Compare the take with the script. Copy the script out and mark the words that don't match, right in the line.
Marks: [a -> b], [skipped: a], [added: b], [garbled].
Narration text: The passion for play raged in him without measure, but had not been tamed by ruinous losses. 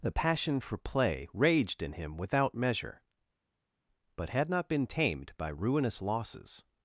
The passion for play raged in him without measure, but had not been tamed by ruinous losses.